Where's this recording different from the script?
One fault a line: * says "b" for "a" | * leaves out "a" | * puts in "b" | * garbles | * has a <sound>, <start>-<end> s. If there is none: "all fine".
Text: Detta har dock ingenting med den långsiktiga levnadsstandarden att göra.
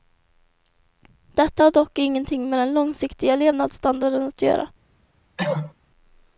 * has a cough, 5.4-5.7 s